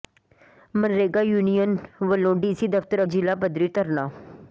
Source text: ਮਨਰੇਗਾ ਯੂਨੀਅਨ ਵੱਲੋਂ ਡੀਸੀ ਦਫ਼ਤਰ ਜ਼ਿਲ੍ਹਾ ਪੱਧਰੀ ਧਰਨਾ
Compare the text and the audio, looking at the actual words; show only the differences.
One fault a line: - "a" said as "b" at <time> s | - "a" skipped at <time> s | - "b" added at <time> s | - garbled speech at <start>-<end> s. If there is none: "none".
none